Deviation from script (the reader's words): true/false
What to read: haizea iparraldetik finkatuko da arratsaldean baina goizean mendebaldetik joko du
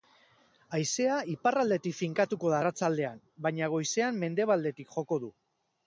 false